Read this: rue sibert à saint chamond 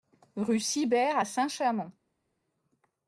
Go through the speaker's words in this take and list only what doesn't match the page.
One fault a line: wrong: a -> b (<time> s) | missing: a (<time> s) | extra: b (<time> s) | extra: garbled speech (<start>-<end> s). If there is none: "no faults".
no faults